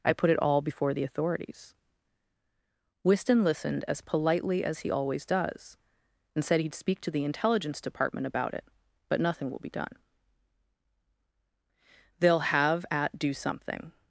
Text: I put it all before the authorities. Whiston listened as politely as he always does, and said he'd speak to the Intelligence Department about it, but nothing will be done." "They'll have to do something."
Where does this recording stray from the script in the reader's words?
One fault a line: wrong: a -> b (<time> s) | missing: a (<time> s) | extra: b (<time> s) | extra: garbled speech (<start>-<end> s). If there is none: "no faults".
wrong: to -> at (12.9 s)